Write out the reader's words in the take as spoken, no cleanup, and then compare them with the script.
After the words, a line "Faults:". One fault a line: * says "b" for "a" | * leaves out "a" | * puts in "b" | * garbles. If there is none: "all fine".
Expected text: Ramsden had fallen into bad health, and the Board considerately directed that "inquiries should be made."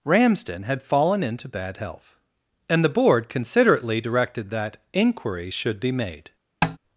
Ramsden had fallen into bad health, and the Board considerately directed that "inquiry should be made."
Faults:
* says "inquiry" for "inquiries"